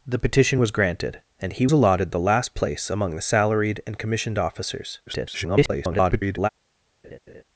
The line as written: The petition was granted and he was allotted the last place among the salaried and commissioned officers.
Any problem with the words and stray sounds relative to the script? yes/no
yes